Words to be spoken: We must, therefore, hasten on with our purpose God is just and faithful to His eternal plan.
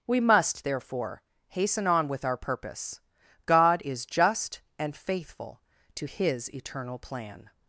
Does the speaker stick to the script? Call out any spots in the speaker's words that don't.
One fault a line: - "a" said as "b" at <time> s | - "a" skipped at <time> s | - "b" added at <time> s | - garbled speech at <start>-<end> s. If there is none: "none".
none